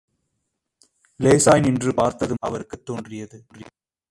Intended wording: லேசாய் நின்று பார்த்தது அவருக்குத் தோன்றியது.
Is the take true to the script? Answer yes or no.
yes